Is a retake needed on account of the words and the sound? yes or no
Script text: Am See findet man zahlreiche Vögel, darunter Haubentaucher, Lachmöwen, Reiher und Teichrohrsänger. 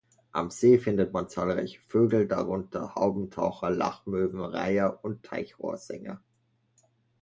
no